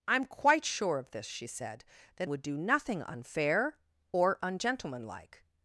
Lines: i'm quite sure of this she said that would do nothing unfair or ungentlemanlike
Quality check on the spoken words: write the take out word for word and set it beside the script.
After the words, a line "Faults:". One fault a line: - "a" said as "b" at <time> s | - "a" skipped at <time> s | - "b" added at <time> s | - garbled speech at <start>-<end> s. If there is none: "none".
i'm quite sure of this she said that would do nothing unfair or ungentlemanlike
Faults:
none